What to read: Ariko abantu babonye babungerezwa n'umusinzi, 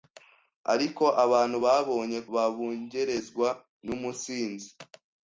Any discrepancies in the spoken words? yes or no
no